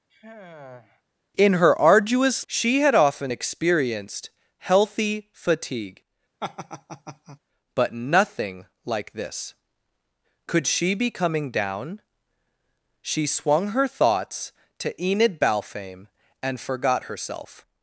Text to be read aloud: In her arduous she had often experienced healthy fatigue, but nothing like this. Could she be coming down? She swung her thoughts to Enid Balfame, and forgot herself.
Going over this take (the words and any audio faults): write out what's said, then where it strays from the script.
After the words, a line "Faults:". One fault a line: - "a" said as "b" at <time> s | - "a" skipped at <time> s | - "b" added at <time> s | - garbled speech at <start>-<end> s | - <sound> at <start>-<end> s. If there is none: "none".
In her arduous she had often experienced healthy fatigue, but nothing like this. Could she be coming down? She swung her thoughts to Enid Balfame, and forgot herself.
Faults:
- sigh at 0.1-1.0 s
- laugh at 6.4-7.4 s